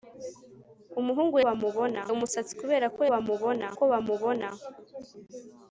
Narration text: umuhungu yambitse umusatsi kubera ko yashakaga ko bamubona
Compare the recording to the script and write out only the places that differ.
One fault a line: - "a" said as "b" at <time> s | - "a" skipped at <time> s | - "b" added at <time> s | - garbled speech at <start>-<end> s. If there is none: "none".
- "yambitse" said as "bamubona" at 1.5 s
- "yashakaga" said as "bamubona" at 3.1 s